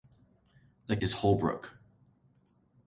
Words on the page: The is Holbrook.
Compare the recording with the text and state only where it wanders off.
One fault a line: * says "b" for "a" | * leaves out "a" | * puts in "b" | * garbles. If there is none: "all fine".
all fine